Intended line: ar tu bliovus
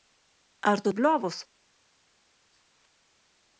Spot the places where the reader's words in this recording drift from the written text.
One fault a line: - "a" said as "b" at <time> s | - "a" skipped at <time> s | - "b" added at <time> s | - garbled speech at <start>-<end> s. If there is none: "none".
none